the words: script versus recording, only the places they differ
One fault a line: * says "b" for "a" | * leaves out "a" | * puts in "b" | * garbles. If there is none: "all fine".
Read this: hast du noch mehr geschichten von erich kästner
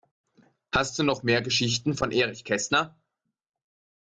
all fine